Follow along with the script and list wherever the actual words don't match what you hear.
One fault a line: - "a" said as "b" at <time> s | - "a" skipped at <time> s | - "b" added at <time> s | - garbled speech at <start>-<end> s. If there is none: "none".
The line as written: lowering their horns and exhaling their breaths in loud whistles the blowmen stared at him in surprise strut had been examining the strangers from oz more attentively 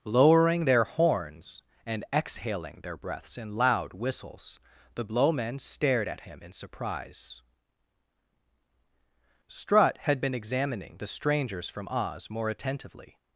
none